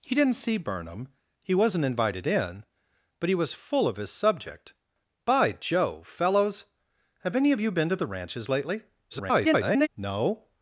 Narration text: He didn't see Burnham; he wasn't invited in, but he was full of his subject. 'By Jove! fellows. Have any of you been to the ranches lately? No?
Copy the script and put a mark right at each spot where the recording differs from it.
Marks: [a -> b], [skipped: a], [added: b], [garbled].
He didn't see Burnham; he wasn't invited in, but he was full of his subject. 'By Jove! fellows. Have any of you been to the ranches lately? [garbled] No?